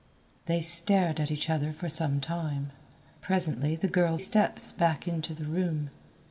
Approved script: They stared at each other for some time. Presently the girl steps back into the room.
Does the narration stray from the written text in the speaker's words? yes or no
no